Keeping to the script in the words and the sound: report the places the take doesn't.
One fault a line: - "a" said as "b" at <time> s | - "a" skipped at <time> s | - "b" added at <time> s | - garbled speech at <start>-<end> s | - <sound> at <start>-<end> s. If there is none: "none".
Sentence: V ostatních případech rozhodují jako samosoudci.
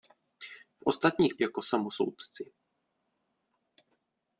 - "případech rozhodují" skipped at 1.4 s